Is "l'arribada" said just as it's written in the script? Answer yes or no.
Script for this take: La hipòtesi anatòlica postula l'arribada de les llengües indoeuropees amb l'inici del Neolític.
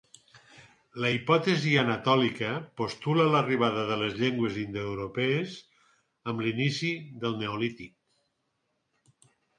yes